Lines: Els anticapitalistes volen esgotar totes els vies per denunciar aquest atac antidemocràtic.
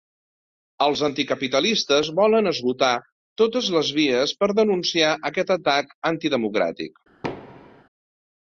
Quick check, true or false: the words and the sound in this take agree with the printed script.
false